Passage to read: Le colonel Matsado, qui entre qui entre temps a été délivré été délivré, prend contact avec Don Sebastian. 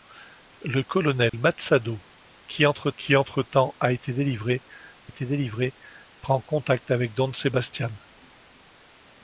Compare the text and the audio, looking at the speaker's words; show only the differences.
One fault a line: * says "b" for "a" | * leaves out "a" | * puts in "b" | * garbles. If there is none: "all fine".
all fine